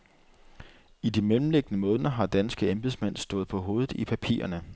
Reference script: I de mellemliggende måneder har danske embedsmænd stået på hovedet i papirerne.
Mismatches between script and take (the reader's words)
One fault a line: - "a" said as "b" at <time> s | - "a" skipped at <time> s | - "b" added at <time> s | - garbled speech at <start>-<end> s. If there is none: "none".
none